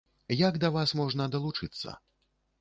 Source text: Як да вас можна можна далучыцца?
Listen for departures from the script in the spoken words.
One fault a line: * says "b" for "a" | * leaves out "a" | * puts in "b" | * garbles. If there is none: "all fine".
* leaves out "можна"